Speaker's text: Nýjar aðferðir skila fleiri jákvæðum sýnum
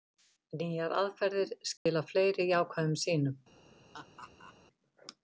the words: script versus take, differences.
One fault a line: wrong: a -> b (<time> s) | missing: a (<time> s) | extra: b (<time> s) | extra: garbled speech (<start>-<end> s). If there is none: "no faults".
no faults